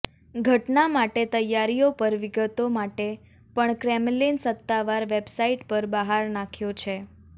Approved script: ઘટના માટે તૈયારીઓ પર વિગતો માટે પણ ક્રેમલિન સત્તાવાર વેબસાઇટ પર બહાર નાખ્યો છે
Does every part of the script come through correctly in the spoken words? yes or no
yes